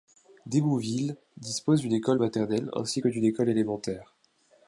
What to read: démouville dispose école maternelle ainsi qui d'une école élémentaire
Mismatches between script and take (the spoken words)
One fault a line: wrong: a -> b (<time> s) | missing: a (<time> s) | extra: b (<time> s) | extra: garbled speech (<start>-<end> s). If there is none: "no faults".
extra: d'une (1.8 s)
wrong: qui -> que (3.0 s)